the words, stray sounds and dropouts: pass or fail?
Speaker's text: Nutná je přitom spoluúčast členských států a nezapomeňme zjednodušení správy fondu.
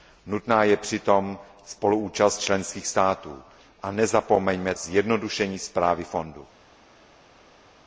pass